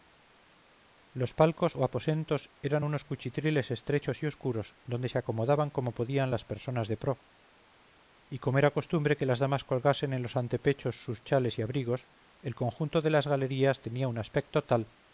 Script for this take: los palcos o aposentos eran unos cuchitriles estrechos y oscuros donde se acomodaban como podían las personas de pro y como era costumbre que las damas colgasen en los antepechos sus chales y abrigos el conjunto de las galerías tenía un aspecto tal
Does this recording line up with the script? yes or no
yes